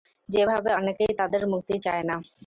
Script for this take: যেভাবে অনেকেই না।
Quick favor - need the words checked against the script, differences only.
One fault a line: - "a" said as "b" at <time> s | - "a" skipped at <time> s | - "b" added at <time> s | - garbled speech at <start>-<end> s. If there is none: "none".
- "তাদের মুক্তি চায়" added at 1.2 s